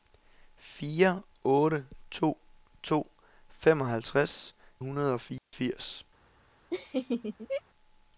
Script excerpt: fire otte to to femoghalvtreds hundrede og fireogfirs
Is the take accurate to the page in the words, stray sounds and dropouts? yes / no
no